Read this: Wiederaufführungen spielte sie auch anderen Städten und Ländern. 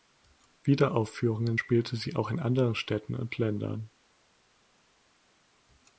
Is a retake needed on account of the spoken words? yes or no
yes